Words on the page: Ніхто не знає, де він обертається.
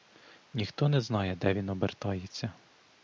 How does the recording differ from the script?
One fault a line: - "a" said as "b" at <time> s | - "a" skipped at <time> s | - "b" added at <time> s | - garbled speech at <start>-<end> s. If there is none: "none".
none